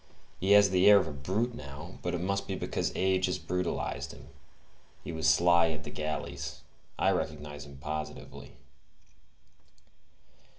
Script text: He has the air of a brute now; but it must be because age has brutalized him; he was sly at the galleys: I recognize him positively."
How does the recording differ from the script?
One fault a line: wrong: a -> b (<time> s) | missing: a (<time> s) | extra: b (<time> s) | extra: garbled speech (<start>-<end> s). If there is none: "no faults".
no faults